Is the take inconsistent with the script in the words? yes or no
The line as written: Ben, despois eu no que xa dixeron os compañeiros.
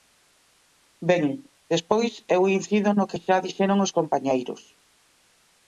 yes